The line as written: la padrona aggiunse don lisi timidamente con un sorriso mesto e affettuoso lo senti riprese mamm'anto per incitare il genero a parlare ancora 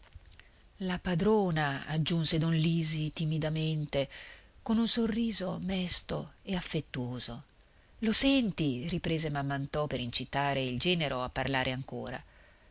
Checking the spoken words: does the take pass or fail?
pass